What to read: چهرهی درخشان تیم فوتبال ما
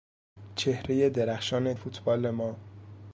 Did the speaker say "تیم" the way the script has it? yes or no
no